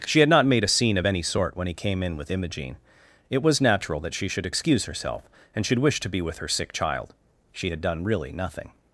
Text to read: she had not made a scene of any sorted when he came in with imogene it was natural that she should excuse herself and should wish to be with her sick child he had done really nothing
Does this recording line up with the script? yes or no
no